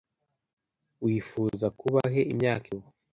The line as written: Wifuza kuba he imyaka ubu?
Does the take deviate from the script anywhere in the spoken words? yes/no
no